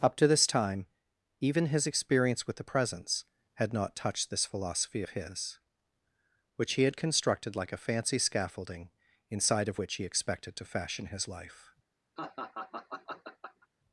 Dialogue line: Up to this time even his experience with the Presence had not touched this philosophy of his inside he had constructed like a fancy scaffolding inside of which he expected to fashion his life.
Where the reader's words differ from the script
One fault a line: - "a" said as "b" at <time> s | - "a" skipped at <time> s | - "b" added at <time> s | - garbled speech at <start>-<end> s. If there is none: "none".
- "inside" said as "which" at 6.6 s